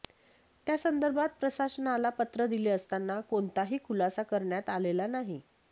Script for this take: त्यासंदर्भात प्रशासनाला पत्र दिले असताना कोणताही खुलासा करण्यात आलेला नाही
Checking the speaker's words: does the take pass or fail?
pass